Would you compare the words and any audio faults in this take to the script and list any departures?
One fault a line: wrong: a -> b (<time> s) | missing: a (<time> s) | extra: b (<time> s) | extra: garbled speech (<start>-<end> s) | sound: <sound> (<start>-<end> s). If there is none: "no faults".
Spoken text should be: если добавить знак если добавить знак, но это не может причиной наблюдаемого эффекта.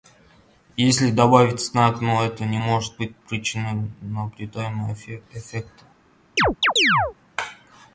missing: если добавить знак (2.0 s)
extra: быть (3.0 s)
sound: chirp (6.4-7.1 s)